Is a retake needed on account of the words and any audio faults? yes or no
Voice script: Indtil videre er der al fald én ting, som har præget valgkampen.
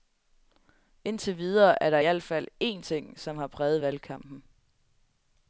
no